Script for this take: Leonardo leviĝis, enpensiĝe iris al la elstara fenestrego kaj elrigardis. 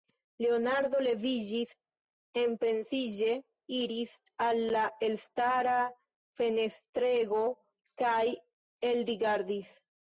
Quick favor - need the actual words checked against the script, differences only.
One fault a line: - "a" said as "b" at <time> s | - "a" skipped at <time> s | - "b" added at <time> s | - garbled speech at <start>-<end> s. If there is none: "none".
none